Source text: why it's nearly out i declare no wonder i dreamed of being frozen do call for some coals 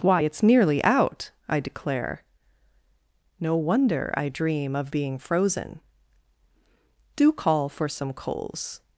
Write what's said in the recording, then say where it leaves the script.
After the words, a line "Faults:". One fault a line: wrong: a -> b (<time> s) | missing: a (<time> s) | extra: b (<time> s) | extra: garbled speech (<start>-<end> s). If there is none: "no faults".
why it's nearly out i declare no wonder i dream of being frozen do call for some coals
Faults:
wrong: dreamed -> dream (4.3 s)